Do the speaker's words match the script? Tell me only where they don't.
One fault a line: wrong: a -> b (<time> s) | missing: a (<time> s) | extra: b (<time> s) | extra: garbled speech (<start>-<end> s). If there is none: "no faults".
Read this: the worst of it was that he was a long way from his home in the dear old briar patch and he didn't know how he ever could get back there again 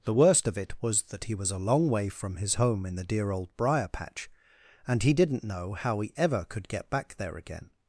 no faults